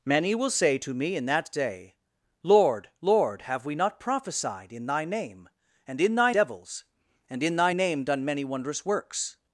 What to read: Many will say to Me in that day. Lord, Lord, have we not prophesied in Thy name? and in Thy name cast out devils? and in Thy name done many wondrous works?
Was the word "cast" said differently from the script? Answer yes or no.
yes